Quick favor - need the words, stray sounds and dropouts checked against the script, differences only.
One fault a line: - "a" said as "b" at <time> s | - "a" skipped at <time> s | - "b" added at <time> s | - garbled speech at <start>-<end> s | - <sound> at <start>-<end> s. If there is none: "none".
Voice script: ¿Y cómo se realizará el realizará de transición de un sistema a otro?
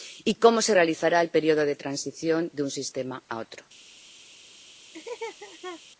- "realizará" said as "periodo" at 1.3 s
- laugh at 4.9-5.8 s